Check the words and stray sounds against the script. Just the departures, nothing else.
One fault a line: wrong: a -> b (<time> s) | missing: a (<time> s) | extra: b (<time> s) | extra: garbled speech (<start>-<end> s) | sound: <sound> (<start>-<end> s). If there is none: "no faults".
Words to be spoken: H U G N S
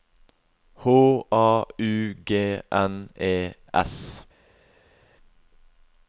extra: A (1.3 s)
extra: E (3.2 s)